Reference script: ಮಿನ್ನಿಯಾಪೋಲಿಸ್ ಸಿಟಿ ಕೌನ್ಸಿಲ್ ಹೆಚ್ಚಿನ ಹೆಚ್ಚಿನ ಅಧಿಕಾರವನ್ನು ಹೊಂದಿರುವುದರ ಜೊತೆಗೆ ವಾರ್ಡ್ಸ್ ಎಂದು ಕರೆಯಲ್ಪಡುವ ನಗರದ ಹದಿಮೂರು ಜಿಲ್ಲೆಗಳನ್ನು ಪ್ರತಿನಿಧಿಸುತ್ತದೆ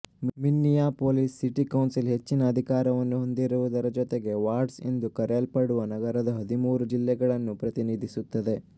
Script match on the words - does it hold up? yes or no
no